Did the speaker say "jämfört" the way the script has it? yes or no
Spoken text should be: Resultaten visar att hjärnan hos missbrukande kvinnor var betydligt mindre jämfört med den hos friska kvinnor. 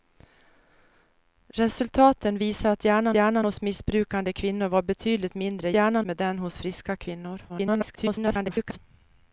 no